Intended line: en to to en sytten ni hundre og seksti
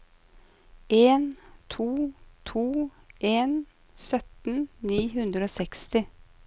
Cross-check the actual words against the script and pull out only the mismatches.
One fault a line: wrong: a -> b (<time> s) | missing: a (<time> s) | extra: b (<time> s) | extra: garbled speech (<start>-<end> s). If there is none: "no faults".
no faults